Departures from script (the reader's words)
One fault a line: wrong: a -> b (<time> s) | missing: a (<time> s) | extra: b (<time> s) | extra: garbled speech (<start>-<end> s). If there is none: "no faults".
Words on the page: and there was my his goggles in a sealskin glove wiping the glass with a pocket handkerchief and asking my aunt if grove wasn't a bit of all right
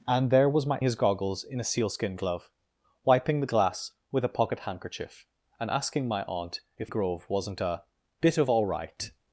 no faults